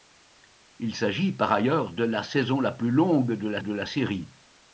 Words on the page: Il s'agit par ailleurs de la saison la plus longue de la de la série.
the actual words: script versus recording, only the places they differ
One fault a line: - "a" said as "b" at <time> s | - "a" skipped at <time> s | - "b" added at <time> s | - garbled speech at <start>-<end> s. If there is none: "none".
none